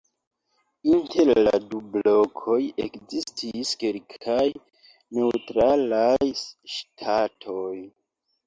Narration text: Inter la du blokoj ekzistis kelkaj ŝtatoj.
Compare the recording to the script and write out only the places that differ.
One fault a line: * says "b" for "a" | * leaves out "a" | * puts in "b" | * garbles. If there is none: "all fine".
* puts in "neŭtralaj"